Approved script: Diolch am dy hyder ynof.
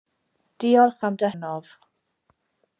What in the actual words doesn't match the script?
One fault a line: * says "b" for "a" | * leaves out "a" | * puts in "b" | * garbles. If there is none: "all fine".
* leaves out "hyder"